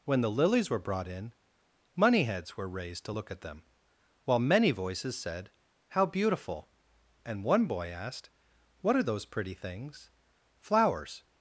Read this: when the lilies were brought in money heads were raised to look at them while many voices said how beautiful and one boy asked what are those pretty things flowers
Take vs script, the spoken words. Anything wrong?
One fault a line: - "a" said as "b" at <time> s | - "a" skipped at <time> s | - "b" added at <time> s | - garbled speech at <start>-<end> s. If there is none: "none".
none